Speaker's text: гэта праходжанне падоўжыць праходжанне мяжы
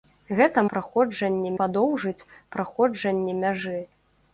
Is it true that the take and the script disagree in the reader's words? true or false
false